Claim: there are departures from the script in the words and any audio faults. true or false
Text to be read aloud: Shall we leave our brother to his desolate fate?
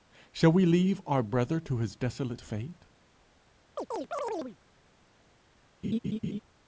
true